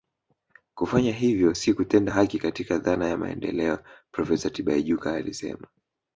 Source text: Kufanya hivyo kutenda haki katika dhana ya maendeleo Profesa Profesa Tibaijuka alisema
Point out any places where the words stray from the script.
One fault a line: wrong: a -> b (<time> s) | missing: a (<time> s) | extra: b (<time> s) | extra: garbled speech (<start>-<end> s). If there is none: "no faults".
extra: si (1.5 s)
missing: Profesa (4.5 s)